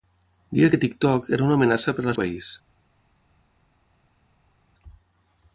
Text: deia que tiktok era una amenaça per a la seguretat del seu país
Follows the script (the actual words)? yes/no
no